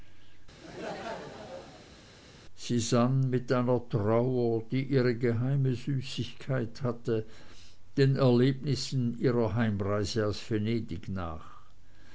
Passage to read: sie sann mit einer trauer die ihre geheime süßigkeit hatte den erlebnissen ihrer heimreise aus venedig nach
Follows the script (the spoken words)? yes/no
yes